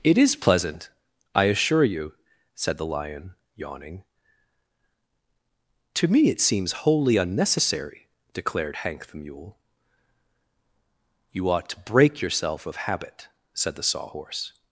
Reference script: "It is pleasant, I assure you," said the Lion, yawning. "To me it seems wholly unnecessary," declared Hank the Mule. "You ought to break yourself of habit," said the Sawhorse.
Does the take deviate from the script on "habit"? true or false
false